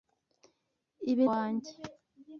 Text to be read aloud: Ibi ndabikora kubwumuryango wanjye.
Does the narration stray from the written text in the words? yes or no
yes